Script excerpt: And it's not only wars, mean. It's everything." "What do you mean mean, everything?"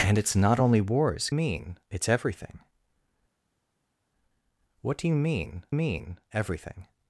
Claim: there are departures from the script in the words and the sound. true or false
false